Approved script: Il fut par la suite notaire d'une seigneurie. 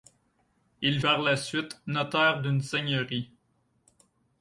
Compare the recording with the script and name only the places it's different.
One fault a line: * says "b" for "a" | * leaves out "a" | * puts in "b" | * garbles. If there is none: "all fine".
* leaves out "fut"